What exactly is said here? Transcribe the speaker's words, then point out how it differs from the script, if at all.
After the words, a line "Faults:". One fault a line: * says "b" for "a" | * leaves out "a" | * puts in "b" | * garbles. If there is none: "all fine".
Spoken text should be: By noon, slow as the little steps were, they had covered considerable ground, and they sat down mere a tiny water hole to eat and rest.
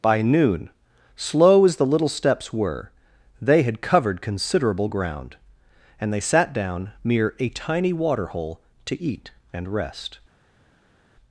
By noon, slow as the little steps were, they had covered considerable ground, and they sat down mere a tiny water hole to eat and rest.
Faults:
all fine